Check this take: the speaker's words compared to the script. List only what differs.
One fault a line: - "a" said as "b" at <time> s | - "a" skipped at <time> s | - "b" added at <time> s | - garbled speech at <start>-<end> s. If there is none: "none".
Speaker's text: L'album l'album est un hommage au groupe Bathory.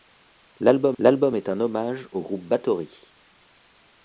none